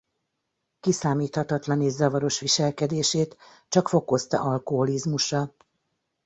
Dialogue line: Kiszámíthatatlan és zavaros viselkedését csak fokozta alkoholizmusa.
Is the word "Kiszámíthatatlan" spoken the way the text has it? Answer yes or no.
yes